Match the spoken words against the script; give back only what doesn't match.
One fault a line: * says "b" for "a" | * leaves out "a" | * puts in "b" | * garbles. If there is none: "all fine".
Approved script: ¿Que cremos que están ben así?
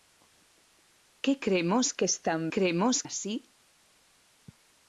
* says "cremos" for "ben"